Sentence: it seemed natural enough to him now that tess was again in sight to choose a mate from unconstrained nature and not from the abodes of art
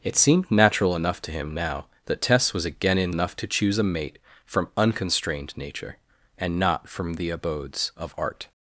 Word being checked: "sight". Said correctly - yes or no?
no